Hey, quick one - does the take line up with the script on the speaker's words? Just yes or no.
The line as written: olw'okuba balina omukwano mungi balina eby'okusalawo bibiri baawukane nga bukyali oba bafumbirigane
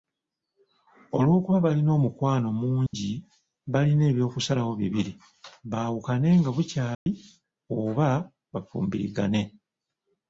yes